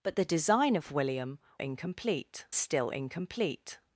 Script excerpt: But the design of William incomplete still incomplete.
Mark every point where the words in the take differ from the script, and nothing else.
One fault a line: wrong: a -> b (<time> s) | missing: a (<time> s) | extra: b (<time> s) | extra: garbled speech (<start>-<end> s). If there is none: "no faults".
no faults